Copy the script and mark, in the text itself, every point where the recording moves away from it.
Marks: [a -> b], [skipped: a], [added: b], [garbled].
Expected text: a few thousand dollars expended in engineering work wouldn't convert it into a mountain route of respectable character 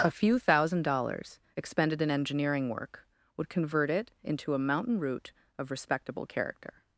a few thousand dollars expended in engineering work [wouldn't -> would] convert it into a mountain route of respectable character